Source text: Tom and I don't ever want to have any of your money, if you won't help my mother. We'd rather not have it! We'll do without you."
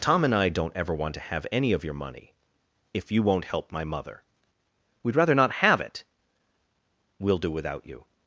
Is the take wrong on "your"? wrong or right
right